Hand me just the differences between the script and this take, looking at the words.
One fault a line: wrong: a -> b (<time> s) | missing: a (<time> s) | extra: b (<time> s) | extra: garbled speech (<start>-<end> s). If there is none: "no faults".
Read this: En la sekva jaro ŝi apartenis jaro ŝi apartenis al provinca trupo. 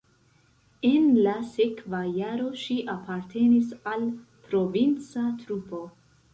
missing: jaro ŝi apartenis (3.7 s)